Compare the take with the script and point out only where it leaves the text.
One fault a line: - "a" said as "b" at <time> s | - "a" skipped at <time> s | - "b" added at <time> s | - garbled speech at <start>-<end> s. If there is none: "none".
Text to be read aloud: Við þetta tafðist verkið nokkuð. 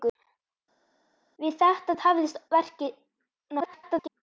- garbled speech at 3.6-4.2 s